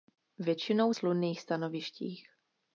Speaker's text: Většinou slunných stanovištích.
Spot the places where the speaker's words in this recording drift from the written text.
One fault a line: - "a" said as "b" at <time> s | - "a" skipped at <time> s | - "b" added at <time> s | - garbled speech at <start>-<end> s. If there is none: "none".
none